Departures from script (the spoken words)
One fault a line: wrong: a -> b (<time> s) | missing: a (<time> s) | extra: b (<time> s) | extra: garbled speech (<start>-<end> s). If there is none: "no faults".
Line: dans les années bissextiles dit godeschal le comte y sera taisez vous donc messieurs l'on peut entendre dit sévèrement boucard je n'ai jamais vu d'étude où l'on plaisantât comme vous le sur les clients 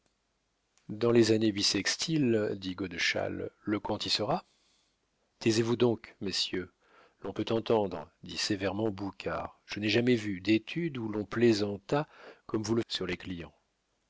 no faults